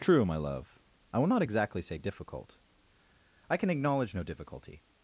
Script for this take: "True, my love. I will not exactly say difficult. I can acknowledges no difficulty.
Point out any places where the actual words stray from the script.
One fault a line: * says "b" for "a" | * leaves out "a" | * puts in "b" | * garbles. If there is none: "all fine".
* says "acknowledge" for "acknowledges"